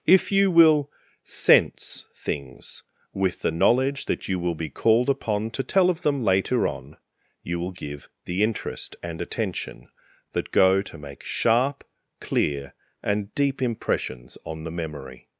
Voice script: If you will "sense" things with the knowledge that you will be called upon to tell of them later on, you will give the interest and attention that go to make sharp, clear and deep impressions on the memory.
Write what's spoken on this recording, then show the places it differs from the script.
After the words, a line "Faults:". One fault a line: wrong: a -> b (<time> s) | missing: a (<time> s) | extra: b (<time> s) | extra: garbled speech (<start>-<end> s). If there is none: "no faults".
If you will "sense" things with the knowledge that you will be called upon to tell of them later on, you will give the interest and attention that go to make sharp, clear and deep impressions on the memory.
Faults:
no faults